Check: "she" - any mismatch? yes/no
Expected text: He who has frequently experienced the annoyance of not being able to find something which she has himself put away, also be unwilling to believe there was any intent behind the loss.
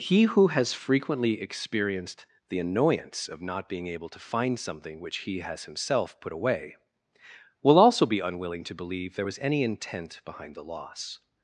yes